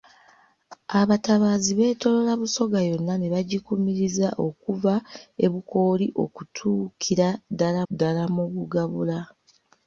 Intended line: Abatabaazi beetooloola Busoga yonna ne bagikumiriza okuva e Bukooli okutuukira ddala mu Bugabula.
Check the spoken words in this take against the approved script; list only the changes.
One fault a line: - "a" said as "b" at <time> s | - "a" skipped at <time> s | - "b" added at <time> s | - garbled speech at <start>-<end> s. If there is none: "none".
- "ddala" added at 7.9 s